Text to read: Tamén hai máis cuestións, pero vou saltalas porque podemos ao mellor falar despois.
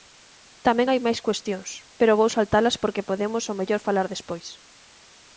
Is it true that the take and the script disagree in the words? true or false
false